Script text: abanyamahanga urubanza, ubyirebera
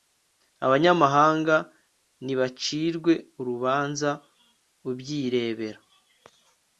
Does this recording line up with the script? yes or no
no